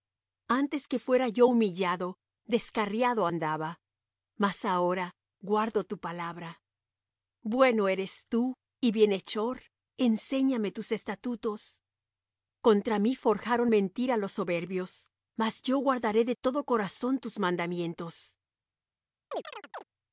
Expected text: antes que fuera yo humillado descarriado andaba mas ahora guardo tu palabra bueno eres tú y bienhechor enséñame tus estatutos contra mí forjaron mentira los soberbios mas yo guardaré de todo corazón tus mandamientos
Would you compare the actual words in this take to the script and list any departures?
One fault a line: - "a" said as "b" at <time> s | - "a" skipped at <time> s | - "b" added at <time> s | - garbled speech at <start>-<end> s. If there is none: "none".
none